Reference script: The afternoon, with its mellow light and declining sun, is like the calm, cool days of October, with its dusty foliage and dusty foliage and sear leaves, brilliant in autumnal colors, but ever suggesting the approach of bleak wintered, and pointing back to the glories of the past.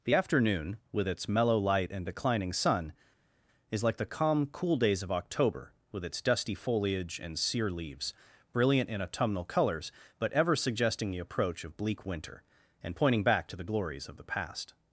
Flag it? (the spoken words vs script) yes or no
yes